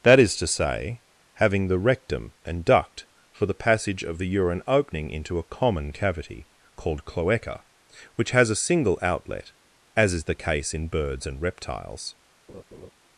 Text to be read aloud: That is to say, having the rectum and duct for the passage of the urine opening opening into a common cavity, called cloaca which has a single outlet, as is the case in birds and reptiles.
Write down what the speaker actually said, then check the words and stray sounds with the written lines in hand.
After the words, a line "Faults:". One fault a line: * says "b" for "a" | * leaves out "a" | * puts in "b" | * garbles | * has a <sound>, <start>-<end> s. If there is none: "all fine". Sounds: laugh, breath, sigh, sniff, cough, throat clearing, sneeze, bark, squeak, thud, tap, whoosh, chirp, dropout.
That is to say, having the rectum and duct for the passage of the urine opening into a common cavity, called cloaca which has a single outlet, as is the case in birds and reptiles.
Faults:
* leaves out "opening"
* has a laugh, 12.5-12.9 s